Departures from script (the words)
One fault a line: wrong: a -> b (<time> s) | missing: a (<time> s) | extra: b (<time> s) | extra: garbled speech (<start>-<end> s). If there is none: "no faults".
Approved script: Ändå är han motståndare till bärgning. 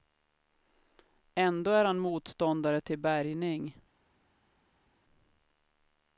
no faults